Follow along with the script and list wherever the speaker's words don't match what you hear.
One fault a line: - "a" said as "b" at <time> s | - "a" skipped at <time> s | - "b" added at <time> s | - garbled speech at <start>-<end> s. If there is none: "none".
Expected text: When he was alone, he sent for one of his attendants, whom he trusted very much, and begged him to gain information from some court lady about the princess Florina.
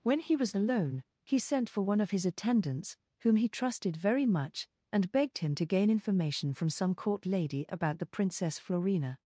none